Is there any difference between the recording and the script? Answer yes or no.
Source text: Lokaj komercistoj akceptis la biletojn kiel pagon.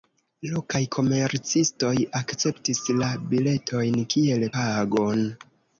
no